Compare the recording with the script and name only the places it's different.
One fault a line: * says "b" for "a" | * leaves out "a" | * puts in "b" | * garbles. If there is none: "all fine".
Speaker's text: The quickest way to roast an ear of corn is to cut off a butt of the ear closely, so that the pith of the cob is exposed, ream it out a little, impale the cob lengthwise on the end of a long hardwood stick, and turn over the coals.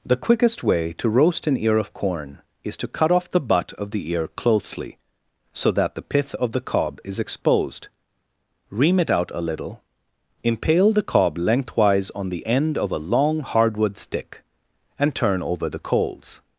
* says "the" for "a"